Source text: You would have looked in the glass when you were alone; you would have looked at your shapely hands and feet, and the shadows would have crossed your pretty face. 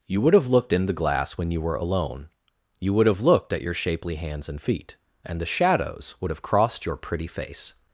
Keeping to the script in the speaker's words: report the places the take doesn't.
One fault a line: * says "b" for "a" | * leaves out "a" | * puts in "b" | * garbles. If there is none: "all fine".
all fine